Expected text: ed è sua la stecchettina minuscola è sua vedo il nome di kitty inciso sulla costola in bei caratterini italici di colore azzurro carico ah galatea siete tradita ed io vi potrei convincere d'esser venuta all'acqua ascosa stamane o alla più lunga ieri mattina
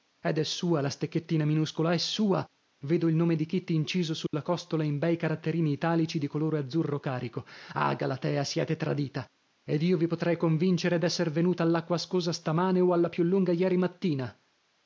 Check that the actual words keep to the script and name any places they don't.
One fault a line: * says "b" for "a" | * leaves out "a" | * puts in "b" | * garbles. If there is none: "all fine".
all fine